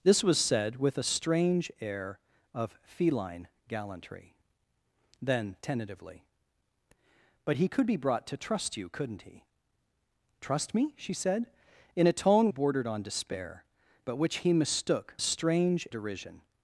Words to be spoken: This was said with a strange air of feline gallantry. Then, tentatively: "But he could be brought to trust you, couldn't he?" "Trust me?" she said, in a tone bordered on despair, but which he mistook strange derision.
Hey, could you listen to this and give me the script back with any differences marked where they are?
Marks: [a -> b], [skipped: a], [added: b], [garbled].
This was said with a strange air of feline gallantry. Then, tentatively: "But he could be brought to trust you, couldn't he?" "Trust me?" she said, in a tone bordered on despair, but which he mistook strange derision.